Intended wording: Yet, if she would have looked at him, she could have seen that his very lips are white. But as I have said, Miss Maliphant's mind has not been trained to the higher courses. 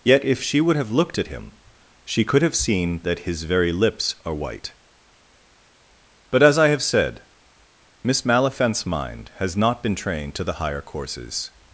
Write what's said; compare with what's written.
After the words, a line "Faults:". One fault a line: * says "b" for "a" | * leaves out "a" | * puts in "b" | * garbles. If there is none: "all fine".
Yet, if she would have looked at him, she could have seen that his very lips are white. But as I have said, Miss Maliphant's mind has not been trained to the higher courses.
Faults:
all fine